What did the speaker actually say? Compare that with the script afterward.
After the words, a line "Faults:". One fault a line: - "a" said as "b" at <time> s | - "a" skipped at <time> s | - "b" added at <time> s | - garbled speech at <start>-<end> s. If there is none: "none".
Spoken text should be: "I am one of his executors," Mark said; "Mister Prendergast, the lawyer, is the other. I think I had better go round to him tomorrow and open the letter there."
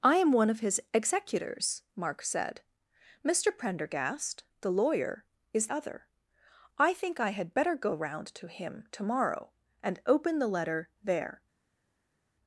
"I am one of his executors," Mark said; "Mister Prendergast, the lawyer, is other. I think I had better go round to him tomorrow and open the letter there."
Faults:
- "the" skipped at 5.7 s